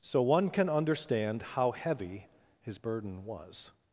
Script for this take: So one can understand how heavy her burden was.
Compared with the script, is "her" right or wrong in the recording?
wrong